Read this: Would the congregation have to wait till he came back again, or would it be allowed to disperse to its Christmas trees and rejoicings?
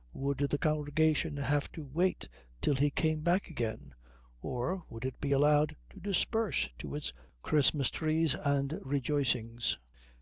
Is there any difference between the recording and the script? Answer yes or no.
no